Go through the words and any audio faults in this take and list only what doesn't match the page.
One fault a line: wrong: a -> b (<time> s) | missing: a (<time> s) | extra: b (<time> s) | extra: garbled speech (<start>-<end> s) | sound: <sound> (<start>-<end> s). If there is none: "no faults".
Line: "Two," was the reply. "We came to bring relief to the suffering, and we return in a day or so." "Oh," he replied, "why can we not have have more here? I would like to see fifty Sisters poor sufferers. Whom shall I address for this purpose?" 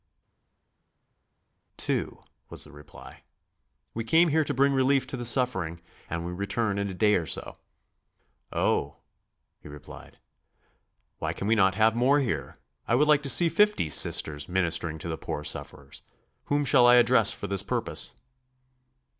extra: here (4.3 s)
missing: have (11.9 s)
extra: ministering to the (14.5 s)